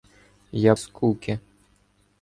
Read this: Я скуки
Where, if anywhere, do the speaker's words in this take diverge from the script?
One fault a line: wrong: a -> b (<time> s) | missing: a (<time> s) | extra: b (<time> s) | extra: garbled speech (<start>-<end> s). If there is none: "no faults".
no faults